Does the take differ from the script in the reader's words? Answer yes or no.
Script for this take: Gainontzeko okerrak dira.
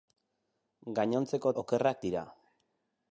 no